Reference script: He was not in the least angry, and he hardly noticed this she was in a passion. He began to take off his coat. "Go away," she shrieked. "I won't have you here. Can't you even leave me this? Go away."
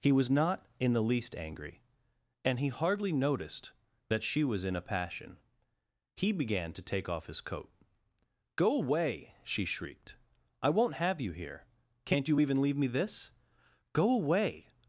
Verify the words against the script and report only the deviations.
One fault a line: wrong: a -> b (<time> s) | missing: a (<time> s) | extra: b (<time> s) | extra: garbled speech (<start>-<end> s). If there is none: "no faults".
wrong: this -> that (4.1 s)